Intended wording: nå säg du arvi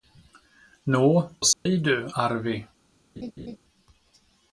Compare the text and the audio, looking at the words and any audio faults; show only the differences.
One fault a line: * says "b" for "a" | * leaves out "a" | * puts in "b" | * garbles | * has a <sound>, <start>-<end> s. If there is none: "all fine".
* has a dropout, 1.5-1.7 s
* has a laugh, 3.2-3.6 s